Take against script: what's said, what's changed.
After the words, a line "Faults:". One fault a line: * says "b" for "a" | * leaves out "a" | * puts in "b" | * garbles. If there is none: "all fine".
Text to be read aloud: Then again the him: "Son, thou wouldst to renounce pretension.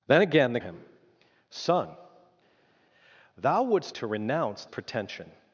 Then again the him: "Son, thou wouldst to renounce pretension.
Faults:
all fine